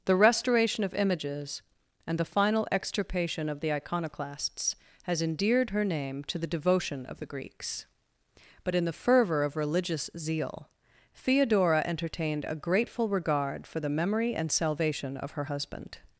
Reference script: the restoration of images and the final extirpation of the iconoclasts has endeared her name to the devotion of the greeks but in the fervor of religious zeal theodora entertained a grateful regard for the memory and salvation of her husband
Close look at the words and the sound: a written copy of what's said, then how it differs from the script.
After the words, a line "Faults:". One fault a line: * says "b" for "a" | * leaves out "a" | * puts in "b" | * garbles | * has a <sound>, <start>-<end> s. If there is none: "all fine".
the restoration of images and the final extirpation of the iconoclasts has endeared her name to the devotion of the greeks but in the fervor of religious zeal theodora entertained a grateful regard for the memory and salvation of her husband
Faults:
all fine